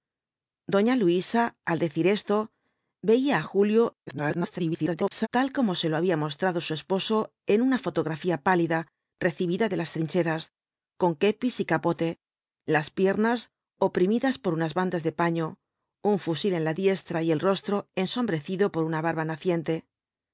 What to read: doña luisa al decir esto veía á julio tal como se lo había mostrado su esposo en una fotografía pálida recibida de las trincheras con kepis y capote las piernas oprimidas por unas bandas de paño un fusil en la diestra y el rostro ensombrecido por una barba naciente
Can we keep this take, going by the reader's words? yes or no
no